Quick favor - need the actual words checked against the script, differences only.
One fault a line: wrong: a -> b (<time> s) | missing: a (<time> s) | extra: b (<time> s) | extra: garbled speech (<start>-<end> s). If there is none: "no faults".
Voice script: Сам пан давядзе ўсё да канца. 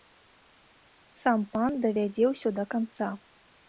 no faults